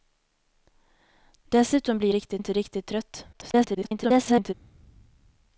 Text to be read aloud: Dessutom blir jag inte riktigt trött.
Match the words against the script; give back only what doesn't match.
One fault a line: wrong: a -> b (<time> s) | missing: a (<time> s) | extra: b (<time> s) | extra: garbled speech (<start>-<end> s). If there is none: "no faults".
wrong: jag -> riktigt (2.1 s)
extra: garbled speech (3.3-4.5 s)